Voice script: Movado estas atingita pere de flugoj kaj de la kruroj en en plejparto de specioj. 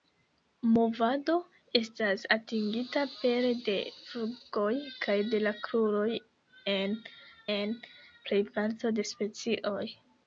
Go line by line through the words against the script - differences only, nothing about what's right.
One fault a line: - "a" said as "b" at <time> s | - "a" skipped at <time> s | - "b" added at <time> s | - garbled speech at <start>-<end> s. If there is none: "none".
none